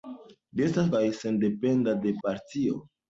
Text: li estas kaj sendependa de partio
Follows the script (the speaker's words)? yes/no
yes